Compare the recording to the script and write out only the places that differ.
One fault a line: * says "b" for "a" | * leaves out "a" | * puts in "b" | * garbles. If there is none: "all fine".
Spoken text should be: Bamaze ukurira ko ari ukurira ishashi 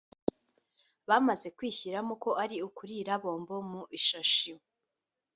* says "kwishyiramo" for "ukurira"
* puts in "bombo mu"